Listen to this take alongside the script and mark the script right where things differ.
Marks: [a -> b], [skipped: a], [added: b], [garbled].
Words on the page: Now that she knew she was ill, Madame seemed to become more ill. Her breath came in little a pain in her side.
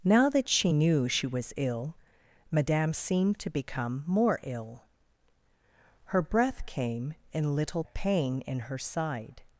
Now that she knew she was ill, Madame seemed to become more ill. Her breath came in little a pain in her side.